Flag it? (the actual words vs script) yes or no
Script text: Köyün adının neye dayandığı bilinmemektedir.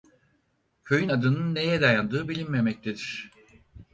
no